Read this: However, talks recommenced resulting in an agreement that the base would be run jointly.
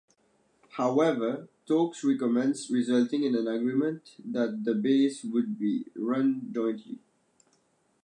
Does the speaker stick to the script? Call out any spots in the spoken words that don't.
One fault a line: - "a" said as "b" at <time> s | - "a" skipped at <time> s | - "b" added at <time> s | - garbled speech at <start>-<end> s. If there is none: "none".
none